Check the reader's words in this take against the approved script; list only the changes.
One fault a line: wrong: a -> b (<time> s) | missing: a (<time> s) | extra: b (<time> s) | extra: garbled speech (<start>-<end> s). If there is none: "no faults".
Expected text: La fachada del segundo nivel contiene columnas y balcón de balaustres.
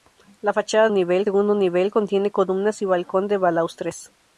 wrong: del -> nivel (0.9 s)